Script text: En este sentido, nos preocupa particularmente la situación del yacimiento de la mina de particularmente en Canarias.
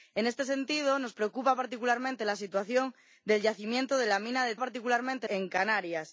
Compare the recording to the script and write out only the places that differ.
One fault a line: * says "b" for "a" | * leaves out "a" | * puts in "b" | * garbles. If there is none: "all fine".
all fine